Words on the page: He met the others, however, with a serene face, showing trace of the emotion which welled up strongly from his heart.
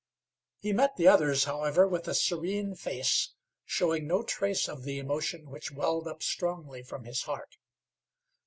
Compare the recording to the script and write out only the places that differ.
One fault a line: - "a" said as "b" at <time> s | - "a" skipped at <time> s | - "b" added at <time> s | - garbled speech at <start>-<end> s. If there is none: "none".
- "no" added at 4.1 s